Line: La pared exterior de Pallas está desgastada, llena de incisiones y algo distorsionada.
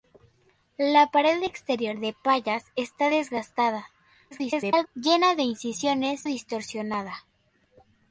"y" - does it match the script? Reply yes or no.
no